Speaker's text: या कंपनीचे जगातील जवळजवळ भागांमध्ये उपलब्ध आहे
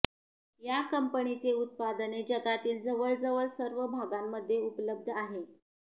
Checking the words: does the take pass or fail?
fail